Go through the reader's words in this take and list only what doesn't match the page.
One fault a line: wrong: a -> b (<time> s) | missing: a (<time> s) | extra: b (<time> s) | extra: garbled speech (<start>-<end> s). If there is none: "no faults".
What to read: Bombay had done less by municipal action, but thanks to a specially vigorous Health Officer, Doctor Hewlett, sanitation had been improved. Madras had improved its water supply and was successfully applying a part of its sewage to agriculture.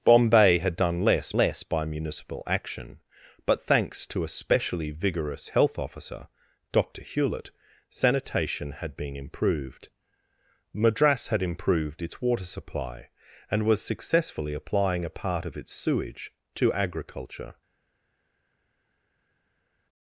extra: less (1.4 s)